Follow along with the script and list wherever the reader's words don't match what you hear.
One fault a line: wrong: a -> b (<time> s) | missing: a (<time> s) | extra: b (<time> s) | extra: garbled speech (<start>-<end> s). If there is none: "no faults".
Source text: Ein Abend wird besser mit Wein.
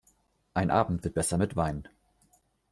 no faults